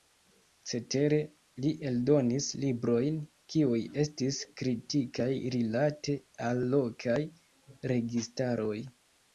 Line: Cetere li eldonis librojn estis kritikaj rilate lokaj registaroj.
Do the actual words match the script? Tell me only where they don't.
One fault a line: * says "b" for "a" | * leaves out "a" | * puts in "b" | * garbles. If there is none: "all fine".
* puts in "kiuj"
* puts in "al"